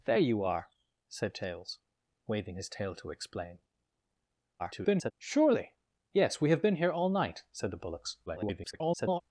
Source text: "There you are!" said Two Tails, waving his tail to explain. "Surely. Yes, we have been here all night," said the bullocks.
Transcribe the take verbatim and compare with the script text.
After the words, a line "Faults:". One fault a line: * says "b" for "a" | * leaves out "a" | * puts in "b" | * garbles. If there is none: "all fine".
"There you are!" said Tails, waving his tail to explain. [garbled] "Surely. Yes, we have been here all night," said the bullocks. [garbled]
Faults:
* leaves out "Two"
* garbles
* garbles